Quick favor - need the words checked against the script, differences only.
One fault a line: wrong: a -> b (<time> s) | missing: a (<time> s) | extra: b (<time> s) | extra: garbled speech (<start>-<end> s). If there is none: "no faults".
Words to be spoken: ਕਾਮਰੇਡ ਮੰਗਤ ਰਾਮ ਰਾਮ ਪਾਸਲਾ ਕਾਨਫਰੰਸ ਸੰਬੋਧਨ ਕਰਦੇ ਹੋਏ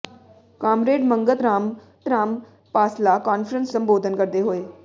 no faults